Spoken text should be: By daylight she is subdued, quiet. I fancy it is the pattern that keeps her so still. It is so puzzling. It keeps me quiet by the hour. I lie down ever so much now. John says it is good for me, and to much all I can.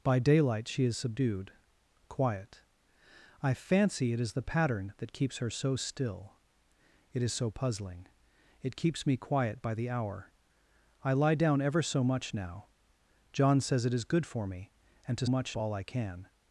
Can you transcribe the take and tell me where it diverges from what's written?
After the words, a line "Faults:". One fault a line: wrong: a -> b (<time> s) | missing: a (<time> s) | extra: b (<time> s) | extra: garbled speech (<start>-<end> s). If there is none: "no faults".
By daylight she is subdued, quiet. I fancy it is the pattern that keeps her so still. It is so puzzling. It keeps me quiet by the hour. I lie down ever so much now. John says it is good for me, and to much all I can.
Faults:
no faults